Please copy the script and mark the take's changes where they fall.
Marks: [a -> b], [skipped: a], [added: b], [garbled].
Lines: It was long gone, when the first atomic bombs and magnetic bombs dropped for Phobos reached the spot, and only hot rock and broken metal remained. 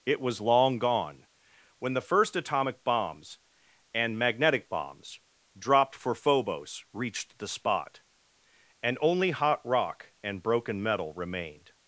It was long gone, when the first atomic bombs and magnetic bombs dropped for Phobos reached the spot, and only hot rock and broken metal remained.